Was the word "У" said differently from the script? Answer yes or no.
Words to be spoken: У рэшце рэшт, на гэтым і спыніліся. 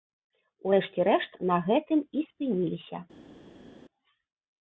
no